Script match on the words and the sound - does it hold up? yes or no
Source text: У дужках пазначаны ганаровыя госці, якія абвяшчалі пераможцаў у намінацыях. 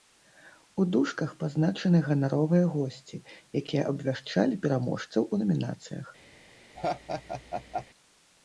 no